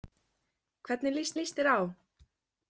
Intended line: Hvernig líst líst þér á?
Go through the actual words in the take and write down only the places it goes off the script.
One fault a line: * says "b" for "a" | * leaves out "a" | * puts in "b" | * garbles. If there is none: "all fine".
all fine